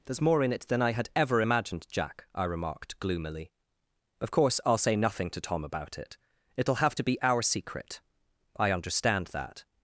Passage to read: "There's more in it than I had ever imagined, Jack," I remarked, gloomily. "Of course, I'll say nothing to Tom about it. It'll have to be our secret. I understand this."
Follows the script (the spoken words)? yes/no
no